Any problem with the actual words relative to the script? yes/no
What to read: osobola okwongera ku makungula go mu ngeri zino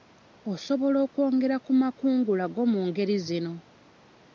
no